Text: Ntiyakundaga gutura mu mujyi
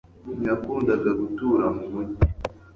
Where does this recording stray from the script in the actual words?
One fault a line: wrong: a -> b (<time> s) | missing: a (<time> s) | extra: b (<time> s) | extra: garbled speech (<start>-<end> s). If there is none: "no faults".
no faults